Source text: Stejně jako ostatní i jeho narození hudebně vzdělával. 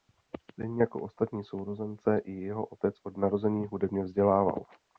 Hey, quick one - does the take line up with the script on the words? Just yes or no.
no